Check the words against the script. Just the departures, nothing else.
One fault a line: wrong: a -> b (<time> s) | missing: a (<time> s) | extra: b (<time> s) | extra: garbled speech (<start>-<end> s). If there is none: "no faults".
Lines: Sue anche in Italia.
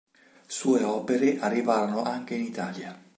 extra: opere arrivarono (0.8 s)